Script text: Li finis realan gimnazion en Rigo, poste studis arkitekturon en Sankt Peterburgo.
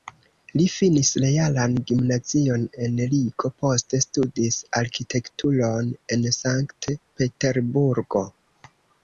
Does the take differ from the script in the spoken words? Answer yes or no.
no